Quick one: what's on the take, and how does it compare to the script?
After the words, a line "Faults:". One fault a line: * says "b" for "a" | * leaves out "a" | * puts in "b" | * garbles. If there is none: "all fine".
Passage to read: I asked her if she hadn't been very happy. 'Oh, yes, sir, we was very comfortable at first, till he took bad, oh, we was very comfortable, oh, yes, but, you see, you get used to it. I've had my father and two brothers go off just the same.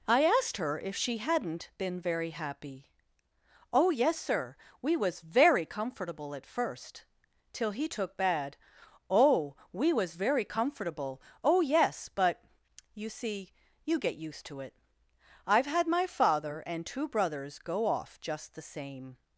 I asked her if she hadn't been very happy. 'Oh, yes, sir, we was very comfortable at first, till he took bad, oh, we was very comfortable, oh, yes, but, you see, you get used to it. I've had my father and two brothers go off just the same.
Faults:
all fine